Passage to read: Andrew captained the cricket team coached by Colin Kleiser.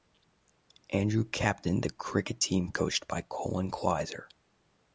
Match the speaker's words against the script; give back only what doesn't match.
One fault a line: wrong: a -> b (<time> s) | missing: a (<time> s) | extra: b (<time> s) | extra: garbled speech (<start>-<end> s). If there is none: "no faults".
no faults